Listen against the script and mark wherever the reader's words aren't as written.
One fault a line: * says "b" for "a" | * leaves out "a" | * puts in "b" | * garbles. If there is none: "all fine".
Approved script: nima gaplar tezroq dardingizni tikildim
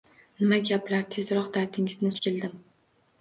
all fine